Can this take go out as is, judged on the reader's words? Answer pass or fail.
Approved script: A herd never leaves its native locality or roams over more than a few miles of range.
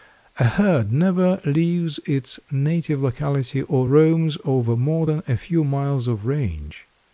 pass